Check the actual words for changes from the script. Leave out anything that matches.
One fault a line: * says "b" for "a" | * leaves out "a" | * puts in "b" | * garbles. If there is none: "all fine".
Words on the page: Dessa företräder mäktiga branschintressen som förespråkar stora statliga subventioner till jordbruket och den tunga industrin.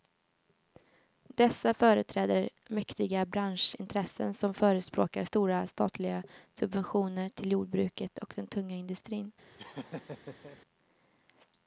all fine